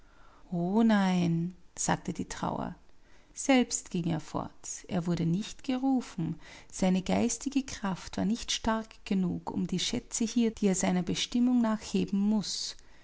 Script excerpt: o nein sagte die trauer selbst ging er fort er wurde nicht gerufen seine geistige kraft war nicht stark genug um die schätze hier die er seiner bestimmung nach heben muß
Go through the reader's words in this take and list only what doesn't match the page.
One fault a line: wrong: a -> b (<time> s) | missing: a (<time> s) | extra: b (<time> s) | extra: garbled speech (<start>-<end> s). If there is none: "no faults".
no faults